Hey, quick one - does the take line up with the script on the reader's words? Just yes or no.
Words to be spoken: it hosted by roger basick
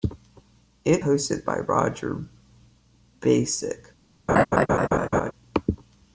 yes